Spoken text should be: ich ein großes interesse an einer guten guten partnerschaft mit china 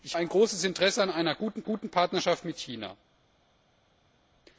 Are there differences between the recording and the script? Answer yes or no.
no